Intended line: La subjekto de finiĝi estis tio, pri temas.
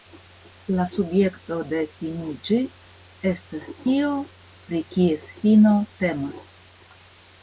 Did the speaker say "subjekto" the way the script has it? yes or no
yes